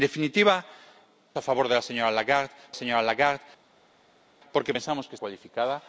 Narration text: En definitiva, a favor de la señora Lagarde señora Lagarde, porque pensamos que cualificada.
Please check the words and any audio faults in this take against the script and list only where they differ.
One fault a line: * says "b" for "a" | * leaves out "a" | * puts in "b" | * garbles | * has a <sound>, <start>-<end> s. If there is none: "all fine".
all fine